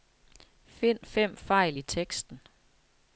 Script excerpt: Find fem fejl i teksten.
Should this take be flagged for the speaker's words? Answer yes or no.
no